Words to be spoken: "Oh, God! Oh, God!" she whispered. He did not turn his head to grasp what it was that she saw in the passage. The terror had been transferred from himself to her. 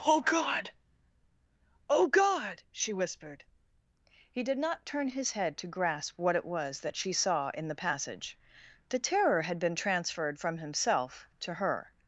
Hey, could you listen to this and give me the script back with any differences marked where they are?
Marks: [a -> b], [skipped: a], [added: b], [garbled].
"Oh, God! Oh, God!" she whispered. He did not turn his head to grasp what it was that she saw in the passage. The terror had been transferred from himself to her.